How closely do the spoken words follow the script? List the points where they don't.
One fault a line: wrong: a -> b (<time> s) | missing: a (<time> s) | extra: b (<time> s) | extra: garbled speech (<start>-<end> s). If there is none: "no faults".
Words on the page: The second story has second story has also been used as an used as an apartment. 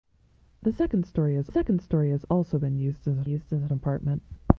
no faults